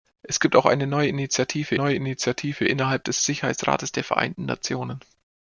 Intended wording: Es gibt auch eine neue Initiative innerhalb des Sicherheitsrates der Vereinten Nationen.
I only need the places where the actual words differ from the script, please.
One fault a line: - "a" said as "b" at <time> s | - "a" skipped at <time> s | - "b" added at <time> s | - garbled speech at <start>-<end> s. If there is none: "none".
- "neue Initiative" added at 1.7 s